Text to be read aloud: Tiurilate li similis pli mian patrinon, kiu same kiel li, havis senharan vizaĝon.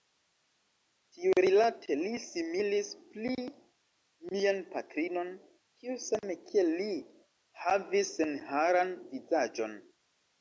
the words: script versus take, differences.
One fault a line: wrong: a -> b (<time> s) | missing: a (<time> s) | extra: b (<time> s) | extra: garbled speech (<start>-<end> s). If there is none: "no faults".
no faults